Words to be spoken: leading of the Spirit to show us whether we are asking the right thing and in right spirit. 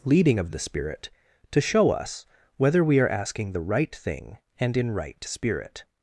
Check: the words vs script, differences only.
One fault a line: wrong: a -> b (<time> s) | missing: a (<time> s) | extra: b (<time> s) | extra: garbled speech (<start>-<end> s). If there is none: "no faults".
no faults